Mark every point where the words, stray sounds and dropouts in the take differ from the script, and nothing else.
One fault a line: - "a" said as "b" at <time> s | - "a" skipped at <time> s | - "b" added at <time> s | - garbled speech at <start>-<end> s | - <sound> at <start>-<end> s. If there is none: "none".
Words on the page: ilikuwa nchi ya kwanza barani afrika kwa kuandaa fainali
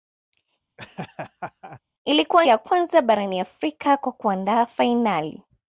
- laugh at 0.8-1.8 s
- "nchi" skipped at 2.5 s